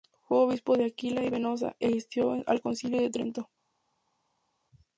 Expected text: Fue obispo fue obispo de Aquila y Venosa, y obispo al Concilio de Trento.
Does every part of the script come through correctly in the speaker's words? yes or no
no